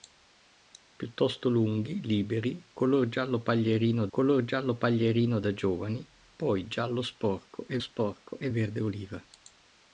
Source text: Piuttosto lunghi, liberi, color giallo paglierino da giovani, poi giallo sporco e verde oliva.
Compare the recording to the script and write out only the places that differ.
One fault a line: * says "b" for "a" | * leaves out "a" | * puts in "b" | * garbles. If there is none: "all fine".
* puts in "color giallo paglierino"
* puts in "sporco e"